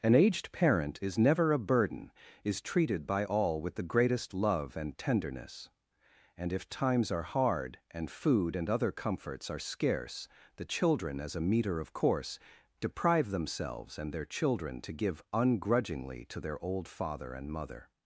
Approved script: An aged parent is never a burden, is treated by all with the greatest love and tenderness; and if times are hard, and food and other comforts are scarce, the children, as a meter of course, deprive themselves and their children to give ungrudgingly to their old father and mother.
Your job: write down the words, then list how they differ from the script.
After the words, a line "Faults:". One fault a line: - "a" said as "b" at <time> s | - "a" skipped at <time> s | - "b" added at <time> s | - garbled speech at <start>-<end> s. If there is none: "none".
An aged parent is never a burden, is treated by all with the greatest love and tenderness; and if times are hard, and food and other comforts are scarce, the children, as a meter of course, deprive themselves and their children to give ungrudgingly to their old father and mother.
Faults:
none